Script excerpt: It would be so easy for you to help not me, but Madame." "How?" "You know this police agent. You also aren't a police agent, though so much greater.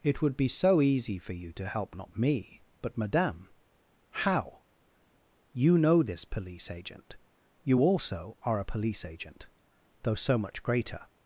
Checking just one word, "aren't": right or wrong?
wrong